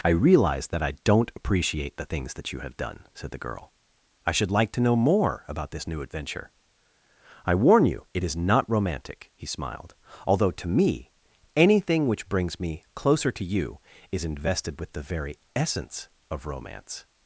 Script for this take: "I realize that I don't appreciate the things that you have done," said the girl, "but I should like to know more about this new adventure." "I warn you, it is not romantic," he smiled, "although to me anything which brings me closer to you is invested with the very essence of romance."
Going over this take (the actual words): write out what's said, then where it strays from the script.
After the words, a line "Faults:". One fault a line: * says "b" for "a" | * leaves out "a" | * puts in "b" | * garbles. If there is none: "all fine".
"I realize that I don't appreciate the things that you have done," said the girl, "I should like to know more about this new adventure." "I warn you, it is not romantic," he smiled, "although to me anything which brings me closer to you is invested with the very essence of romance."
Faults:
* leaves out "but"